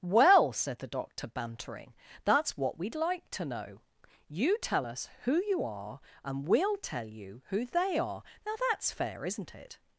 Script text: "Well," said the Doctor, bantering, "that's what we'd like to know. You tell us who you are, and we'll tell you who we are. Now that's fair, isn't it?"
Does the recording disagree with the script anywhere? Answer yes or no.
yes